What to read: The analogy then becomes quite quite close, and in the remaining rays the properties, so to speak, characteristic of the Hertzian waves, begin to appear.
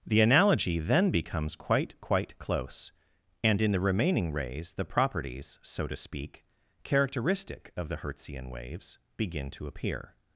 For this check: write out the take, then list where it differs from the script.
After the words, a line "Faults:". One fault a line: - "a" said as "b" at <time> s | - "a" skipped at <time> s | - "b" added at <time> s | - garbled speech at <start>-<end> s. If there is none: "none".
The analogy then becomes quite quite close, and in the remaining rays the properties, so to speak, characteristic of the Hertzian waves, begin to appear.
Faults:
none